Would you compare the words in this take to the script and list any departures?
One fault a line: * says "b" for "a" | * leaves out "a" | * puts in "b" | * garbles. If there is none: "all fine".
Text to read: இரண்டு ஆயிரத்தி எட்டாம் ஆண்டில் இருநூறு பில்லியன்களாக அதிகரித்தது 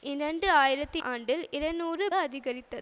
* leaves out "எட்டாம்"
* leaves out "பில்லியன்களாக"